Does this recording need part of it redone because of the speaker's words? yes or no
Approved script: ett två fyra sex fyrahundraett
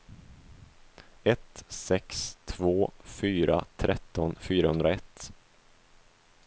yes